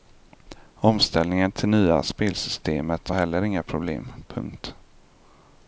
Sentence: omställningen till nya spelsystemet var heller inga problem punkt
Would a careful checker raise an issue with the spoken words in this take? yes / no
no